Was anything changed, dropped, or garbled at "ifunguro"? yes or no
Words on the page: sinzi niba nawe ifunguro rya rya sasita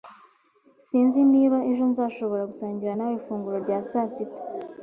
no